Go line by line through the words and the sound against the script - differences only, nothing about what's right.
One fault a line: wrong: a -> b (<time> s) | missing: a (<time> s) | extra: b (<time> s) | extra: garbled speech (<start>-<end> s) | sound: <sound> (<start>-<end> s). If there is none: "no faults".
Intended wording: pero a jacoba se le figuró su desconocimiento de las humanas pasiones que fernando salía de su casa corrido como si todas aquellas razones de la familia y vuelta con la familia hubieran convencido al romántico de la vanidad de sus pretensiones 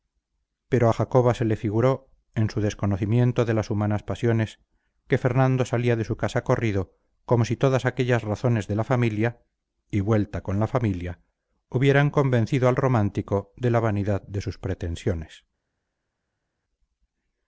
extra: en (2.4 s)